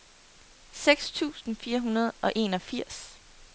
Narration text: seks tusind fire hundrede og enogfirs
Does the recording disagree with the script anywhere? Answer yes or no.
no